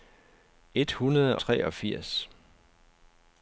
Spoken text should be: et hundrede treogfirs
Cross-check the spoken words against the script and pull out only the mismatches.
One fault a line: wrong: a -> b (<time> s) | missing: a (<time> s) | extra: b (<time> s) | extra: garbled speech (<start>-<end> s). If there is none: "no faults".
no faults